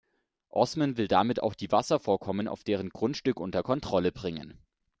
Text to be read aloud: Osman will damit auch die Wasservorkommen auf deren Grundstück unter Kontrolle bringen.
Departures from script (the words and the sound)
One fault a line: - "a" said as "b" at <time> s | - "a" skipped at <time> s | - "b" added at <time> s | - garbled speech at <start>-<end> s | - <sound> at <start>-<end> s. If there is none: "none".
none